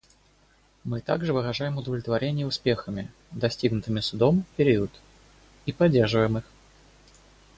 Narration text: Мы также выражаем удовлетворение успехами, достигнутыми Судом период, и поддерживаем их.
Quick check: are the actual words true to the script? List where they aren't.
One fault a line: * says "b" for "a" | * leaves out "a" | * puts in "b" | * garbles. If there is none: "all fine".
all fine